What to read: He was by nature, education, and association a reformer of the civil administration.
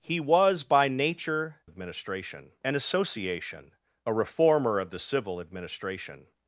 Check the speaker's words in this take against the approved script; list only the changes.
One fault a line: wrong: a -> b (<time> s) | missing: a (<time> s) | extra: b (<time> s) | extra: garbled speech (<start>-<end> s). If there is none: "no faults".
wrong: education -> administration (1.6 s)